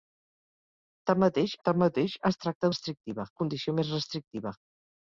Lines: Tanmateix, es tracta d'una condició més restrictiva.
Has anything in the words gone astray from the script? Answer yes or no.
yes